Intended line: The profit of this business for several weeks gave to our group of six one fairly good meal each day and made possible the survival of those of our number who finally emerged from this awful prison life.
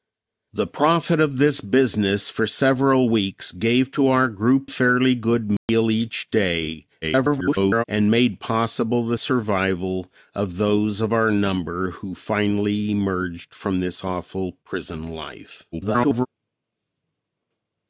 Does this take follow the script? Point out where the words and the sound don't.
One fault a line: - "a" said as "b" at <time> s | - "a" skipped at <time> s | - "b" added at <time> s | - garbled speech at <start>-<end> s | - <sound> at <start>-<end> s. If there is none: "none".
- "of six one" skipped at 4.7 s
- dropout at 5.6-5.7 s
- garbled speech at 7.0-7.8 s
- garbled speech at 15.7-16.3 s